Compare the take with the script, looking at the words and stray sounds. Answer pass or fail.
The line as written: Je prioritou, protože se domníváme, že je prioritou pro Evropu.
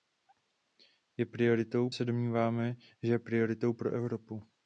fail